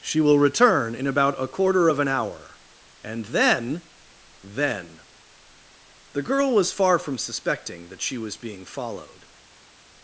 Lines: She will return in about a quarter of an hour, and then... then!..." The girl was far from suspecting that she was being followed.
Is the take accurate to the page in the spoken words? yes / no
yes